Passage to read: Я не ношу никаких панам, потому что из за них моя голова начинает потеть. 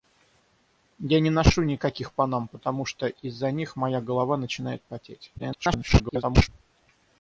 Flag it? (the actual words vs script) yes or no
yes